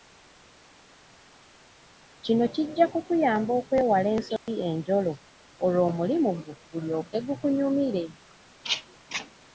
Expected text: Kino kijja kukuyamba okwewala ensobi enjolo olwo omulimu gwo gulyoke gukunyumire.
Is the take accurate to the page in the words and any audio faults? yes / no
no